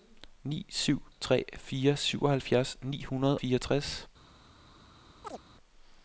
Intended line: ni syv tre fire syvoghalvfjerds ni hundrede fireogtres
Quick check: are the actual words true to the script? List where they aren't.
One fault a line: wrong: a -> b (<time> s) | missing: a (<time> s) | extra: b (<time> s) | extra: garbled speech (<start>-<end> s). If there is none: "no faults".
no faults